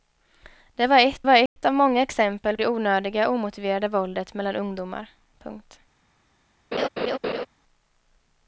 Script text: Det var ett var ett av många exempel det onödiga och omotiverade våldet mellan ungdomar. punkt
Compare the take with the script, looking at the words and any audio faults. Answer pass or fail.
fail